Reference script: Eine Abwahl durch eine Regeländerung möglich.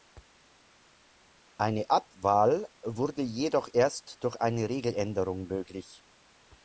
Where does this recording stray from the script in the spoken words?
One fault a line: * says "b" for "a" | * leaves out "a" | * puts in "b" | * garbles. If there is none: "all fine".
* puts in "wurde jedoch erst"